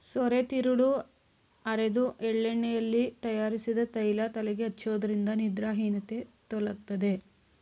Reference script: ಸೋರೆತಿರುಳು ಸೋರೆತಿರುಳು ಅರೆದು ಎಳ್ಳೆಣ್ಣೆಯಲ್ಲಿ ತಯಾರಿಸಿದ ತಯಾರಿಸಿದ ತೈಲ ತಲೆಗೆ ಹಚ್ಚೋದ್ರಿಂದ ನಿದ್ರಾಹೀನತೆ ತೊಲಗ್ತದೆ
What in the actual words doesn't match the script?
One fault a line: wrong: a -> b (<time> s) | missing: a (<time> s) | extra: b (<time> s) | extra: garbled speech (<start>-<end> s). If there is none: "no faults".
missing: ಸೋರೆತಿರುಳು (0.9 s)
missing: ತಯಾರಿಸಿದ (3.8 s)